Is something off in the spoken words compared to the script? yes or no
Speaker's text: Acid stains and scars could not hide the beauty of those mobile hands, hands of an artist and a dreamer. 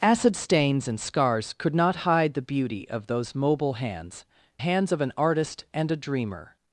no